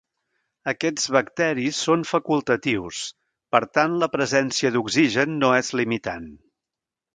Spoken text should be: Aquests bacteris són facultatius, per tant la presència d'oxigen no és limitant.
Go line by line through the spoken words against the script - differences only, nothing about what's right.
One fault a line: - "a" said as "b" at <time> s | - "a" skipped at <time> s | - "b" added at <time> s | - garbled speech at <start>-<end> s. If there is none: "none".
none